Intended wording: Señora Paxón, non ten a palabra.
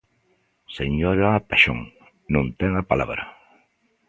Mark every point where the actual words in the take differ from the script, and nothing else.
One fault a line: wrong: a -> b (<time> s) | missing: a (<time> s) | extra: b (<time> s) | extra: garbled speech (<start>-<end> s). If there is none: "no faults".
no faults